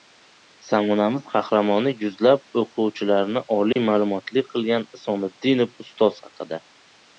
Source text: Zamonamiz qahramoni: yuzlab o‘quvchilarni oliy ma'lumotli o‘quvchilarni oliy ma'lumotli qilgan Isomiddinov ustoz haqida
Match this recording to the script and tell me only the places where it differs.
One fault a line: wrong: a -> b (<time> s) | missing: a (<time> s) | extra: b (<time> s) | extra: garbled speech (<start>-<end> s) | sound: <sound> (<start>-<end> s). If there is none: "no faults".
sound: dropout (3.7-3.8 s)
missing: o‘quvchilarni oliy ma'lumotli (4.5 s)